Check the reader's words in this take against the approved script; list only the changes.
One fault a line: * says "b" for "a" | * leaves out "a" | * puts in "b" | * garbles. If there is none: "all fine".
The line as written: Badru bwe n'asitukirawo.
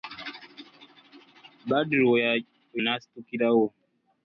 all fine